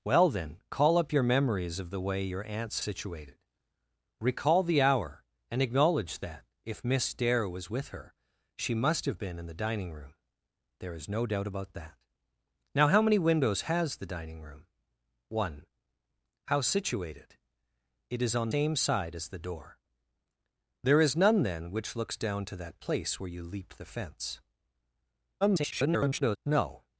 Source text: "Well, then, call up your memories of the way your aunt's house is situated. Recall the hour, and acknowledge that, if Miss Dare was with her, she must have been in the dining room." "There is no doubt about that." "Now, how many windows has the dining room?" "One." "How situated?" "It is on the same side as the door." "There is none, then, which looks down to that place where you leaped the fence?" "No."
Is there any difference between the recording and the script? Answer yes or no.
yes